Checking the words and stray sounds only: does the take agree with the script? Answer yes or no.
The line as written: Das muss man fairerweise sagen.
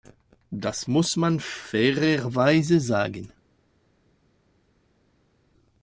yes